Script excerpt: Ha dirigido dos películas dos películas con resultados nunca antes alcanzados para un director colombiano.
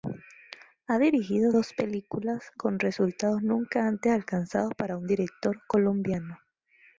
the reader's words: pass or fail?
fail